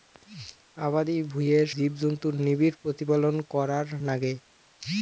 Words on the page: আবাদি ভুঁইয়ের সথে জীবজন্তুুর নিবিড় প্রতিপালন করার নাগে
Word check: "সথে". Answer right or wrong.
wrong